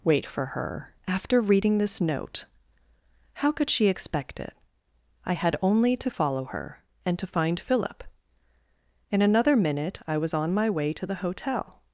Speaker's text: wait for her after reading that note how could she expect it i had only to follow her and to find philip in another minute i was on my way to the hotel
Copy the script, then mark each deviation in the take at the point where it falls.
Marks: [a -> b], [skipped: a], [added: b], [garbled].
wait for her after reading [that -> this] note how could she expect it i had only to follow her and to find philip in another minute i was on my way to the hotel